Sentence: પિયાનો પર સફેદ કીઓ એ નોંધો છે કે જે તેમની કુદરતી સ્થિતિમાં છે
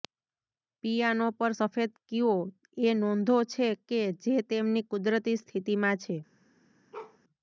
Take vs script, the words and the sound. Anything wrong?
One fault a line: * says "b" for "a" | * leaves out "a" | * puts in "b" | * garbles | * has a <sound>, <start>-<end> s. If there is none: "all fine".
* has a bark, 6.9-7.2 s